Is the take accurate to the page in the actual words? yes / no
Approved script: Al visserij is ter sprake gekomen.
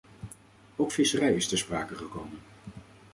no